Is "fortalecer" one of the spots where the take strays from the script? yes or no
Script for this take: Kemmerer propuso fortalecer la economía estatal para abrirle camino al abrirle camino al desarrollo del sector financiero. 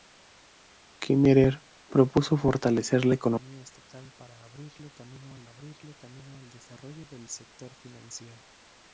no